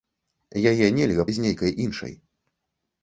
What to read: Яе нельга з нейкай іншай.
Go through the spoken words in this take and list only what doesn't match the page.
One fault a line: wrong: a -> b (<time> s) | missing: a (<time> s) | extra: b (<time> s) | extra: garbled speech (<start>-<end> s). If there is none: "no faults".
no faults